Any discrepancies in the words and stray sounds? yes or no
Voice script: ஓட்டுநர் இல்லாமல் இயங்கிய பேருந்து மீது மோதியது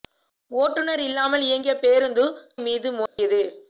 yes